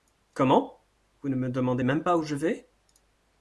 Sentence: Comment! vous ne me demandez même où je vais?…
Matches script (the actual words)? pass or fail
fail